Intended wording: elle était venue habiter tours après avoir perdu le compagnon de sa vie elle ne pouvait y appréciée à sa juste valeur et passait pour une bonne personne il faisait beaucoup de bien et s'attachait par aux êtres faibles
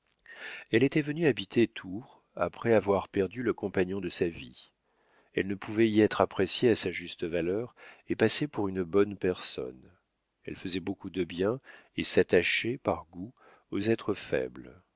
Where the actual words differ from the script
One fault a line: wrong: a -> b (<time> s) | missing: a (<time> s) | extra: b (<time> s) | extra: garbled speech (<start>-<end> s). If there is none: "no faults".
extra: être (6.0 s)
wrong: il -> elle (10.4 s)
extra: goût (13.1 s)